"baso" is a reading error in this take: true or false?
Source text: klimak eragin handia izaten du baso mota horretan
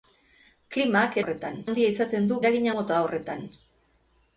true